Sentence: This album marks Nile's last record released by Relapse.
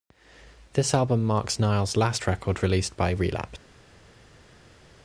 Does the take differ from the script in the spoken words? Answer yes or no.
no